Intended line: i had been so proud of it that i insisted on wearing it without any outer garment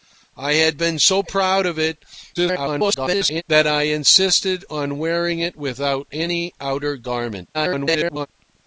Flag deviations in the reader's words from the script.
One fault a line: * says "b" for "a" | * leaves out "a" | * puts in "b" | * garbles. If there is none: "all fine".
* garbles
* garbles